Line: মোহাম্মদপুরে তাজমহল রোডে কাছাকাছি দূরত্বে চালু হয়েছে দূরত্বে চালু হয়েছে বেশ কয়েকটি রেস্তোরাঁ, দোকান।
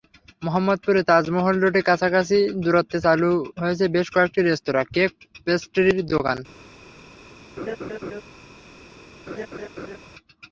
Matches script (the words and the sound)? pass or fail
fail